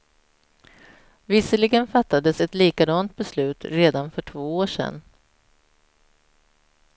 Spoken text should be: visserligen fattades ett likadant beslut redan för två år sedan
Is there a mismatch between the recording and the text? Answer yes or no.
no